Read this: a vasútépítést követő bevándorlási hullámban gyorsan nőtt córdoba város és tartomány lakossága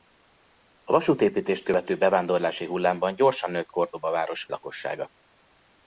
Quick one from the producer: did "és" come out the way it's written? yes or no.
no